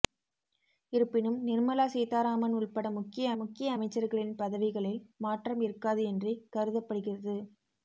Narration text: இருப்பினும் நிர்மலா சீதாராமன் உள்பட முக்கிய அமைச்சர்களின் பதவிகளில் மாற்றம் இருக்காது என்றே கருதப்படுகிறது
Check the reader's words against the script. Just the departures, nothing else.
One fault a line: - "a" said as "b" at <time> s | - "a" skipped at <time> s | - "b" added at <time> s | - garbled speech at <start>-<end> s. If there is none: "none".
- "முக்கிய" added at 3.4 s